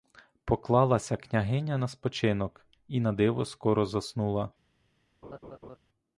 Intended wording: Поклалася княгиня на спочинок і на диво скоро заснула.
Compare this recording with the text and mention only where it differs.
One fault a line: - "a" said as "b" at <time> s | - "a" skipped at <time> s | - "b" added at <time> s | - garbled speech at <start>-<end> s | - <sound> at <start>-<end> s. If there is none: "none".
- laugh at 5.2-5.8 s